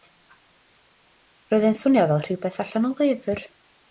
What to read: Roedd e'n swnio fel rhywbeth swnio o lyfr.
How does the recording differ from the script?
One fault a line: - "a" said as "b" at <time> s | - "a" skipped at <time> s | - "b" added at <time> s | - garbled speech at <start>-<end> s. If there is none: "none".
- "swnio" said as "allan" at 2.6 s